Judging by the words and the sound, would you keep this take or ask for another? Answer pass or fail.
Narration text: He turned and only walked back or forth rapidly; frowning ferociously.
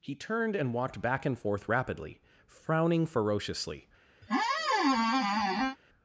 fail